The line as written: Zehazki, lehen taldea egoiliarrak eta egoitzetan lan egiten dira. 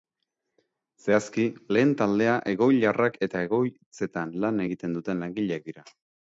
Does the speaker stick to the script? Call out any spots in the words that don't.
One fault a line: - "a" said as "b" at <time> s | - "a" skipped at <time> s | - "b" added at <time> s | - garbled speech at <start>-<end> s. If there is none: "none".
- "duten langileak" added at 5.0 s